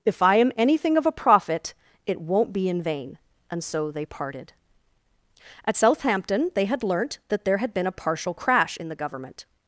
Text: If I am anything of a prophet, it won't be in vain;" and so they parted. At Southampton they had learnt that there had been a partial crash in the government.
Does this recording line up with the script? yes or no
yes